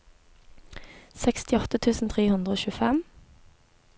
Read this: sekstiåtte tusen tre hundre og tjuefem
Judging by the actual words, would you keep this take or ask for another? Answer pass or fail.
pass